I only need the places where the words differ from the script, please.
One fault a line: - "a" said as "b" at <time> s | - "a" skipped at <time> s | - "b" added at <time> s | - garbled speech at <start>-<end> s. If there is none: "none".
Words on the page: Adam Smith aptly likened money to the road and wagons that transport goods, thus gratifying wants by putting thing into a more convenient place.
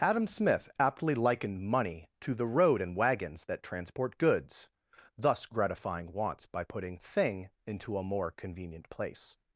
none